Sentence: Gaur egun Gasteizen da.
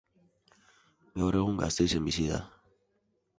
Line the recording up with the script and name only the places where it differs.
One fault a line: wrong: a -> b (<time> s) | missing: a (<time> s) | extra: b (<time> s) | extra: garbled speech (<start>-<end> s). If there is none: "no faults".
extra: bizi (2.1 s)